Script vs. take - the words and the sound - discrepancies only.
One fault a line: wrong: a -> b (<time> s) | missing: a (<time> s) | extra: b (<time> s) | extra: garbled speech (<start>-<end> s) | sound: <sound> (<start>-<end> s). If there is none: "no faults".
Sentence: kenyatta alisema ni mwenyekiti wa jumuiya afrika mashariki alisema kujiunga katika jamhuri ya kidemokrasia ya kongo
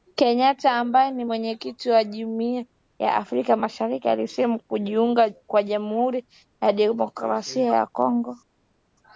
wrong: alisema -> ambaye (0.8 s)
extra: ya (3.0 s)
wrong: katika -> kwa (5.5 s)